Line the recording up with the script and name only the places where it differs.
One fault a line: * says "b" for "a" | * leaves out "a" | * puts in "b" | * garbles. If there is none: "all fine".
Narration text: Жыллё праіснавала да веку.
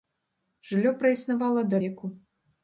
all fine